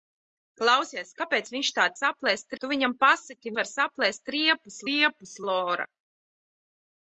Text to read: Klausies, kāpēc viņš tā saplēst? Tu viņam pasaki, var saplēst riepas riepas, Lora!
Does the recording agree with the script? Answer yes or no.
yes